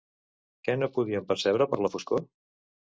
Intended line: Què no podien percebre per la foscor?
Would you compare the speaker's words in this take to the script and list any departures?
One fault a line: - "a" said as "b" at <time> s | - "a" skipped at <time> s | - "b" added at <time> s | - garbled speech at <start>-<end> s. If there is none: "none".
none